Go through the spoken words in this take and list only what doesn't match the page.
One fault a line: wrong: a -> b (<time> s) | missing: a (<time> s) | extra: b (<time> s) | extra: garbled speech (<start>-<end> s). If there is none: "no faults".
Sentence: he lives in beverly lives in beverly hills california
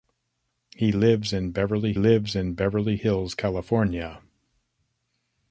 no faults